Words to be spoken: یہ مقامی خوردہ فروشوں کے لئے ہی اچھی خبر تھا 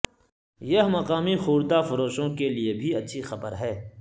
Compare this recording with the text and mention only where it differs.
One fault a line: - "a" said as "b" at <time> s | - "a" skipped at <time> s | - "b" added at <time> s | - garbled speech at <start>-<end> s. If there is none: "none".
- "ہی" said as "بھی" at 2.7 s
- "تھا" said as "ہے" at 3.5 s